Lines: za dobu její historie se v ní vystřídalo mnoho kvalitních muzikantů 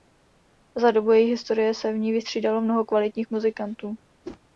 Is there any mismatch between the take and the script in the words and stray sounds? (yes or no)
yes